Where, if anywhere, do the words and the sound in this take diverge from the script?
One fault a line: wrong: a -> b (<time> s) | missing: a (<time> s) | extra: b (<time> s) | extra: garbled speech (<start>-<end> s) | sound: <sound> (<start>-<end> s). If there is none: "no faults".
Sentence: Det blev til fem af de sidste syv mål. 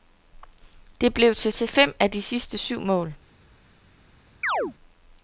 extra: til (1.5 s)
sound: chirp (4.4-4.7 s)